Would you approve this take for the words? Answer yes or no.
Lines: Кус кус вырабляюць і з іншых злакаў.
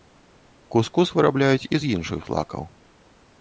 yes